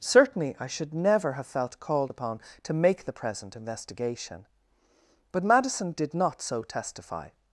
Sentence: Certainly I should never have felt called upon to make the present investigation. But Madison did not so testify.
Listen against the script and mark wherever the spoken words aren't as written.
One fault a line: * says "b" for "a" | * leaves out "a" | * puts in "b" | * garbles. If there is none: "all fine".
all fine